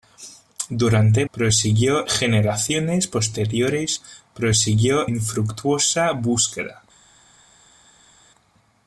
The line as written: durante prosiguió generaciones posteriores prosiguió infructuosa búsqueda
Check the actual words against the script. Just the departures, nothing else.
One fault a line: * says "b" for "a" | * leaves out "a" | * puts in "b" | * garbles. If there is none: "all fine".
all fine